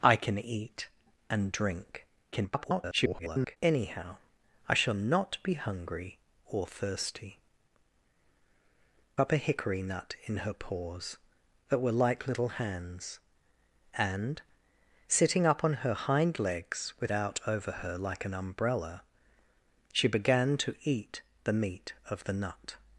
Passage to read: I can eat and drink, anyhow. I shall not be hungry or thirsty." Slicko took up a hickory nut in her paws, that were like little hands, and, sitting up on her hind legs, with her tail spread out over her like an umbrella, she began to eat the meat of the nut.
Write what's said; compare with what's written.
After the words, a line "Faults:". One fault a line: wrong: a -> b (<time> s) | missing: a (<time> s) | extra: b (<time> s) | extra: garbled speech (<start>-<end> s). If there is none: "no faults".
I can eat and drink, [garbled] anyhow. I shall not be hungry or thirsty." Up a hickory nut in her paws, that were like little hands, and, sitting up on her hind legs, with out over her like an umbrella, she began to eat the meat of the nut.
Faults:
extra: garbled speech (2.3-3.6 s)
missing: Slicko took (7.4 s)
missing: her tail spread (17.1 s)